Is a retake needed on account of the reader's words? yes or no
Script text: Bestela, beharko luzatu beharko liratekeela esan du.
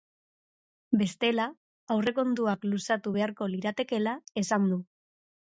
yes